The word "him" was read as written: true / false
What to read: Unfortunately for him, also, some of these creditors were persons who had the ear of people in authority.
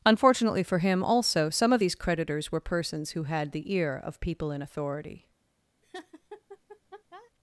true